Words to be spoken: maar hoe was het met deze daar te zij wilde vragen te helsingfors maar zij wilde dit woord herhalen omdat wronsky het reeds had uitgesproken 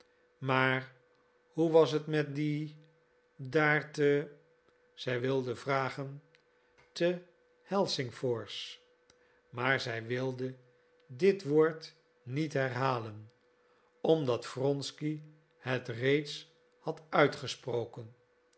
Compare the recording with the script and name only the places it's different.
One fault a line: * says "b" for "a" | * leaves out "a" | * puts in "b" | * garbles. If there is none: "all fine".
* says "die" for "deze"
* puts in "niet"